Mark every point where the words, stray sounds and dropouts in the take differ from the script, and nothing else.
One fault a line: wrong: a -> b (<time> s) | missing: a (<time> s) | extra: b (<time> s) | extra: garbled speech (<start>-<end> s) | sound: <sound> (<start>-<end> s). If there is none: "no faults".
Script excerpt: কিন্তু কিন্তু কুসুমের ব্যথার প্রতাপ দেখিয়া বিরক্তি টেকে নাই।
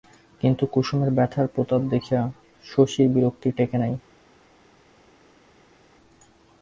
missing: কিন্তু (0.6 s)
extra: শশীর (2.6 s)